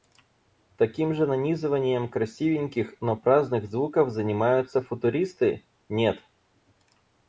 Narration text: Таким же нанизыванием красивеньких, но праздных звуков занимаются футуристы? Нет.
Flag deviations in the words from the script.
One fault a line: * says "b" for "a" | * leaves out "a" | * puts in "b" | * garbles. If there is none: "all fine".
all fine